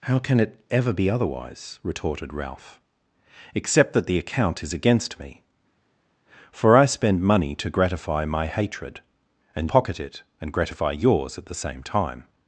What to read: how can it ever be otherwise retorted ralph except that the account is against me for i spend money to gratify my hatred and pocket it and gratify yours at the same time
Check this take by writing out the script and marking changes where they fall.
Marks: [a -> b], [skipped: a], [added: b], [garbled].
how can it ever be otherwise retorted ralph except that the account is against me for i spend money to gratify my hatred and pocket it and gratify yours at the same time